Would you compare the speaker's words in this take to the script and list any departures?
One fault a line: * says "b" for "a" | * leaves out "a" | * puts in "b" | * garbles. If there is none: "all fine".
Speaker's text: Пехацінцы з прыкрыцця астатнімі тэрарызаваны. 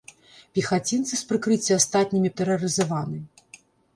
all fine